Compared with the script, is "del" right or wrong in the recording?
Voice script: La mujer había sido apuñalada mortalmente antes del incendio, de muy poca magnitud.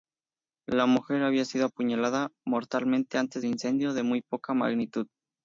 wrong